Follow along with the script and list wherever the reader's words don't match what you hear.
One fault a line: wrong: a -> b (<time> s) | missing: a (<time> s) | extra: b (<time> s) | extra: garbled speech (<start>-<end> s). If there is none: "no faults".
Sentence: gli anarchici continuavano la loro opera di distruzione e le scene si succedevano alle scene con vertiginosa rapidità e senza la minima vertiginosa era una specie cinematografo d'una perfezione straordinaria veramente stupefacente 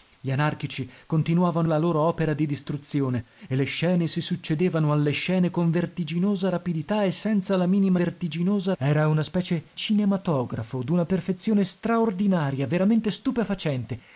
no faults